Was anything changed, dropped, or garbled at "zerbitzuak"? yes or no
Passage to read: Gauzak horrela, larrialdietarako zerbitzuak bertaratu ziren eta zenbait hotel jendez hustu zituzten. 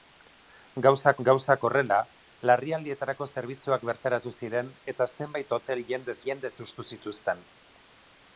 no